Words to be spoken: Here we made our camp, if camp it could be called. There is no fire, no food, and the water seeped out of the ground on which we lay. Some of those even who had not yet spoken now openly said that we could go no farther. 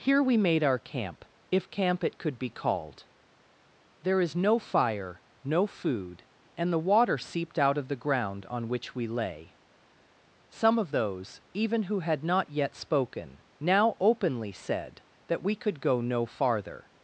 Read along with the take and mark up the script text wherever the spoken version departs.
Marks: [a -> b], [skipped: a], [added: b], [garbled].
Here we made our camp, if camp it could be called. There is no fire, no food, and the water seeped out of the ground on which we lay. Some of those even who had not yet spoken now openly said that we could go no farther.